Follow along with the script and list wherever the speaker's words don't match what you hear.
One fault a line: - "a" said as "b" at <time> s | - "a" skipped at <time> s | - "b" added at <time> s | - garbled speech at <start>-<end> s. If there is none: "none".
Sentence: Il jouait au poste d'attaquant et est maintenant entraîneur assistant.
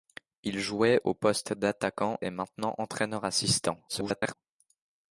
- "et" skipped at 2.2 s
- garbled speech at 3.9-4.3 s